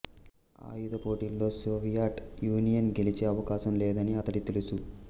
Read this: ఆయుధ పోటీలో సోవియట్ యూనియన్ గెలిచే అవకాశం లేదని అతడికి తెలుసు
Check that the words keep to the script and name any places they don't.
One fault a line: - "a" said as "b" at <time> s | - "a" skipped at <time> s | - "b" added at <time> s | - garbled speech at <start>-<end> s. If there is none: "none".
none